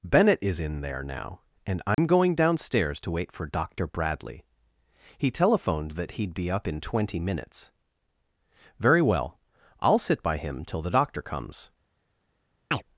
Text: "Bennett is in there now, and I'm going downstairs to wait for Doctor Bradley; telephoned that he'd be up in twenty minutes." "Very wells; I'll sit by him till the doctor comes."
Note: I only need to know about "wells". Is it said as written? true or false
false